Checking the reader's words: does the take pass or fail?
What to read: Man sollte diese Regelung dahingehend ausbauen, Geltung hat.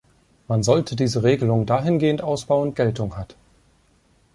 pass